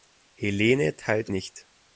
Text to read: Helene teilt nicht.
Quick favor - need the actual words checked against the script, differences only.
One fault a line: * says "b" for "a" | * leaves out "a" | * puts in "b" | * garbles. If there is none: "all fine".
all fine